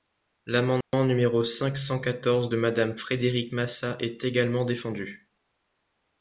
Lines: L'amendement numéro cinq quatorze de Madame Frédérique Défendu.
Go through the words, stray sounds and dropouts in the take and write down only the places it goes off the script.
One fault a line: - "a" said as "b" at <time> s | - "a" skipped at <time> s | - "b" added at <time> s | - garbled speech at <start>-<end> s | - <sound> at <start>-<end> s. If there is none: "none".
- dropout at 0.8-0.9 s
- "cent" added at 1.8 s
- "Massat est également" added at 3.5 s